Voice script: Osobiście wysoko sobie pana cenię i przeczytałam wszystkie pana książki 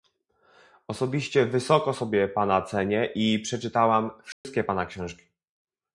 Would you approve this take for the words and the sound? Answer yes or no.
no